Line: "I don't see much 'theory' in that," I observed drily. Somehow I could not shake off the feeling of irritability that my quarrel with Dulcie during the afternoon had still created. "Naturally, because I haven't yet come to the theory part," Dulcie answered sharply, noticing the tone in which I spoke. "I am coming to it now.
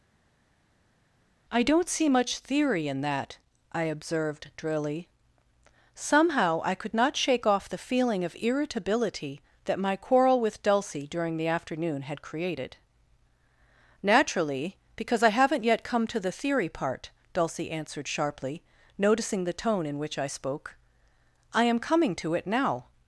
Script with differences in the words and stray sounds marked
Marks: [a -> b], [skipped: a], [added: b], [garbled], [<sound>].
"I don't see much 'theory' in that," I observed drily. Somehow I could not shake off the feeling of irritability that my quarrel with Dulcie during the afternoon had [skipped: still] created. "Naturally, because I haven't yet come to the theory part," Dulcie answered sharply, noticing the tone in which I spoke. "I am coming to it now.